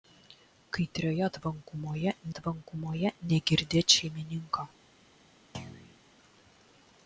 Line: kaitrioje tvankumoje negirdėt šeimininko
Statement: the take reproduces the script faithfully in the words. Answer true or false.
false